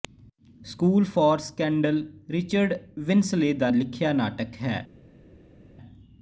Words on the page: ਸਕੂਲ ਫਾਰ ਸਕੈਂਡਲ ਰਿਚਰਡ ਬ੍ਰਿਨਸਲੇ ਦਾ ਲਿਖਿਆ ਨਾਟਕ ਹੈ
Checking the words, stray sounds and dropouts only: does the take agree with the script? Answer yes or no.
yes